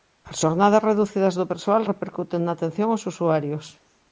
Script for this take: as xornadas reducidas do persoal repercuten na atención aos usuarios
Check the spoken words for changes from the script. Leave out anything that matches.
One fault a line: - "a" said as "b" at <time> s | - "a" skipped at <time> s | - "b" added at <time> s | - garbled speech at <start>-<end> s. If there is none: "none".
none